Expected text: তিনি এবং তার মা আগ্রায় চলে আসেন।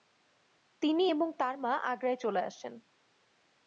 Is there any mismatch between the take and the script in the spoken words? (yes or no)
no